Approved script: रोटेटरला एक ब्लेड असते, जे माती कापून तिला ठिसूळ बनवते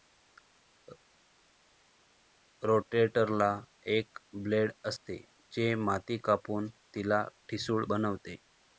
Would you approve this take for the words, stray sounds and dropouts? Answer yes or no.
yes